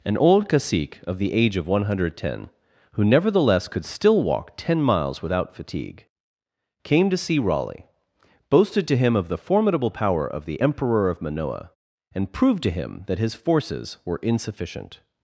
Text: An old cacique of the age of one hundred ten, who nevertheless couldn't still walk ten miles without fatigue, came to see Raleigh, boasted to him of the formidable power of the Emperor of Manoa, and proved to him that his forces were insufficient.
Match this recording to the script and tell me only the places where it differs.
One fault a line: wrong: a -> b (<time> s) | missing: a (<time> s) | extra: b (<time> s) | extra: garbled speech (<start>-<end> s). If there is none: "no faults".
wrong: couldn't -> could (3.7 s)